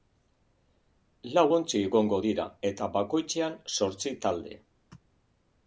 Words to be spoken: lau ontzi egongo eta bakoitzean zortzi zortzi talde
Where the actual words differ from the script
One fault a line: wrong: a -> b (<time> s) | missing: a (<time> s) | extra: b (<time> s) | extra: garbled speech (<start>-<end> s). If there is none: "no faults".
extra: dira (2.3 s)
missing: zortzi (4.2 s)